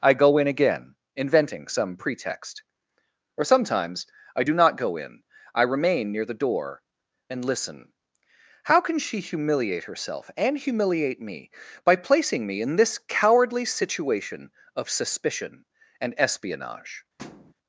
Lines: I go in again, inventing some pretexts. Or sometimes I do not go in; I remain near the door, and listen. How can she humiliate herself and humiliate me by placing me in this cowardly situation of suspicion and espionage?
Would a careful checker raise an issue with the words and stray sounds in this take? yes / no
yes